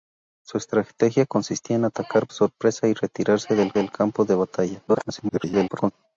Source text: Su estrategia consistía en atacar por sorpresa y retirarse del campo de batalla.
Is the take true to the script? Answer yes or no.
no